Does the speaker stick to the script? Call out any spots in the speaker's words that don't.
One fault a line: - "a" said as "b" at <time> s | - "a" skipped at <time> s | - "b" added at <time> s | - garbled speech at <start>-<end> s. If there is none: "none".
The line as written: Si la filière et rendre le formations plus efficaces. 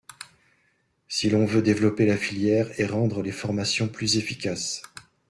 - "l'on veut développer" added at 1.3 s
- "le" said as "les" at 3.2 s